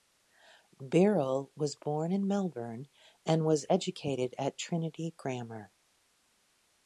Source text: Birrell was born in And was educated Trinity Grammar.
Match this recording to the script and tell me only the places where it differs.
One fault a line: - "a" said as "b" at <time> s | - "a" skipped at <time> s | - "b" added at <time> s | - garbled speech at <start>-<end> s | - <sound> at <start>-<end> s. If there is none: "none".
- "Melbourne" added at 2.3 s
- "at" added at 4.4 s